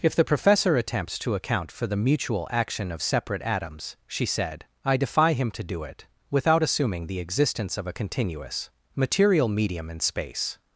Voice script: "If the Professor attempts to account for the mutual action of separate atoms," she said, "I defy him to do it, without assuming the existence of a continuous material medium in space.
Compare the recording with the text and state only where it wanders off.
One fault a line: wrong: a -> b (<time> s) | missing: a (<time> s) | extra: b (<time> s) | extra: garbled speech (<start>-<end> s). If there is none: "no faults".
no faults